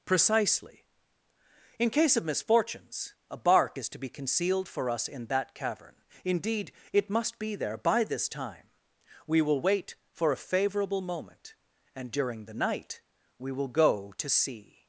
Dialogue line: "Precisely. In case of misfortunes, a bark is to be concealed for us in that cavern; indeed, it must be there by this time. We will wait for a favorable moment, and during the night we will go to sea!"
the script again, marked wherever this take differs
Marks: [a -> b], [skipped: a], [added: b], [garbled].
"Precisely. In case of misfortunes, a bark is to be concealed for us in that cavern; indeed, it must be there by this time. We will wait for a favorable moment, and during the night we will go to sea!"